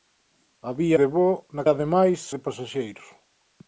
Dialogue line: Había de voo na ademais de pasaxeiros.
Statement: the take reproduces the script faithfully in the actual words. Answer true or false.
true